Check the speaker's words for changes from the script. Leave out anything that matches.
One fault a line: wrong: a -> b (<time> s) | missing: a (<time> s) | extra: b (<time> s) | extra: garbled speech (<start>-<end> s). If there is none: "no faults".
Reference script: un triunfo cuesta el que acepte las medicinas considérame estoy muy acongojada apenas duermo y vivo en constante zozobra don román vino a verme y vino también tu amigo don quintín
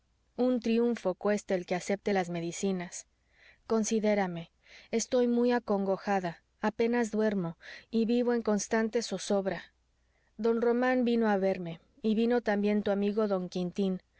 no faults